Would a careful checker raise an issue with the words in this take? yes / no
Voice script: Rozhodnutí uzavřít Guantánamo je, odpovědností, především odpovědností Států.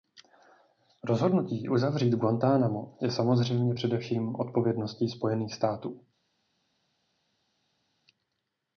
yes